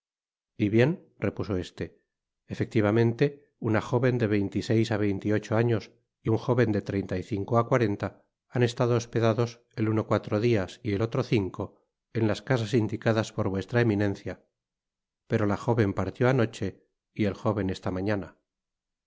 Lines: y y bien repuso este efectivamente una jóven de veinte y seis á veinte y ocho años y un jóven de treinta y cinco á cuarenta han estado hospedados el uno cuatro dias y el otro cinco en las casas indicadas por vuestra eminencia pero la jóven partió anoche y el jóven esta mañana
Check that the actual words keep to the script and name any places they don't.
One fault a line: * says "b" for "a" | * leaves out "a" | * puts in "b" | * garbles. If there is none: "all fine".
* leaves out "y"